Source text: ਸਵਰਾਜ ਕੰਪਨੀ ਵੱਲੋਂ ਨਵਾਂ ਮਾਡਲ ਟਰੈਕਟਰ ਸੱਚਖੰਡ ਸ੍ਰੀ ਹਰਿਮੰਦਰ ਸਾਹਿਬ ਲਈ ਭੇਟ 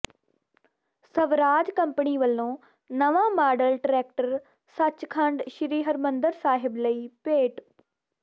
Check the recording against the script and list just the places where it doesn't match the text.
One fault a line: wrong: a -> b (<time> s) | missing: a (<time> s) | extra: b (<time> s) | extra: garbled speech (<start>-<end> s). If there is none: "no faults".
no faults